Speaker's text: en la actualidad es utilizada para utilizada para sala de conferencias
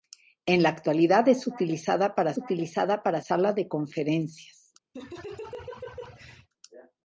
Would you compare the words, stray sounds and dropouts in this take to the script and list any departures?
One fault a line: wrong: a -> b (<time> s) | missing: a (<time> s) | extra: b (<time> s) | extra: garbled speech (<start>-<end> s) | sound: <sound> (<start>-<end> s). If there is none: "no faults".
sound: laugh (4.9-6.5 s)